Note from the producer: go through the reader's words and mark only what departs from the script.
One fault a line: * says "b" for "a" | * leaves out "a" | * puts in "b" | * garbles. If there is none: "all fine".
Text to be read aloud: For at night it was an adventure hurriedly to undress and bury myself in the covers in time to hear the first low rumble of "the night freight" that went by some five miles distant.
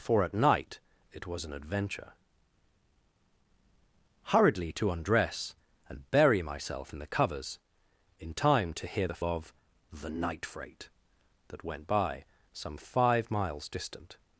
* leaves out "first low rumble"